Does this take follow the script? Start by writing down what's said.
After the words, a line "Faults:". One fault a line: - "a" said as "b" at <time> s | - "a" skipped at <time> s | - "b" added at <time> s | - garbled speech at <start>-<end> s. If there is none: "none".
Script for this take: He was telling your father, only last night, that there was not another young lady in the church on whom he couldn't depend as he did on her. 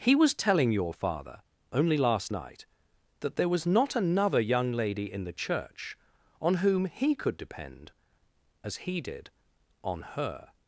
He was telling your father, only last night, that there was not another young lady in the church on whom he could depend as he did on her.
Faults:
- "couldn't" said as "could" at 7.2 s